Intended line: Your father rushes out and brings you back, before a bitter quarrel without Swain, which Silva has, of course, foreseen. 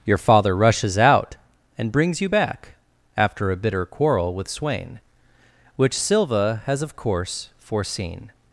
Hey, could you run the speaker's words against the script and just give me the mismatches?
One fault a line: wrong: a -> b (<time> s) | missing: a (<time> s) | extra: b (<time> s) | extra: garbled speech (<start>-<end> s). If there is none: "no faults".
wrong: before -> after (3.2 s)
wrong: without -> with (4.3 s)